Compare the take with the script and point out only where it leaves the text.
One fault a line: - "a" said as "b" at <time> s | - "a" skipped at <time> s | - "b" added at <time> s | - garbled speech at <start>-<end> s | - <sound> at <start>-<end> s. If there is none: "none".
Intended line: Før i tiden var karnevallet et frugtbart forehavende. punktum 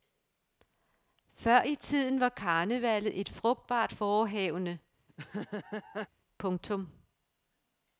- laugh at 5.1-6.1 s